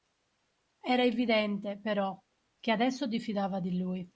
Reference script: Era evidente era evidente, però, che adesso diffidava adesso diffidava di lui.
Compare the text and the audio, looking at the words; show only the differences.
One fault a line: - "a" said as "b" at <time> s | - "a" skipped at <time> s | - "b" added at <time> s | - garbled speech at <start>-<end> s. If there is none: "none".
- "era evidente" skipped at 1.8 s
- "adesso diffidava" skipped at 3.6 s